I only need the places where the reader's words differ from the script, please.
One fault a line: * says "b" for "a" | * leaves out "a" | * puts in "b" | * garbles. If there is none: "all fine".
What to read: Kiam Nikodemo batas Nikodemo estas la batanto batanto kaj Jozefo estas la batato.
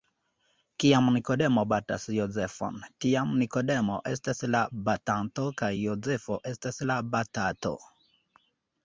* puts in "Jozefon tiam"
* leaves out "batanto"